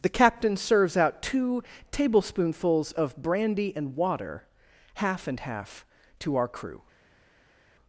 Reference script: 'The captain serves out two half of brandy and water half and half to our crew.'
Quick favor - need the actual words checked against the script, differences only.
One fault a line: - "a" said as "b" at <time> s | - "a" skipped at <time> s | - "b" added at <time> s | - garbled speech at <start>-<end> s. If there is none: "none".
- "half" said as "tablespoonfuls" at 1.9 s